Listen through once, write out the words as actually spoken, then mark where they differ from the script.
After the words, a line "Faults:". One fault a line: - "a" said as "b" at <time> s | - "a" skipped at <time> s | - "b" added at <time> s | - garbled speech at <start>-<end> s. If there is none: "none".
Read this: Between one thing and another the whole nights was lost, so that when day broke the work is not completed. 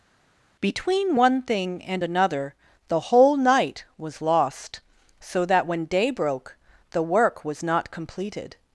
Between one thing and another the whole night was lost, so that when day broke the work was not completed.
Faults:
- "nights" said as "night" at 3.4 s
- "is" said as "was" at 7.4 s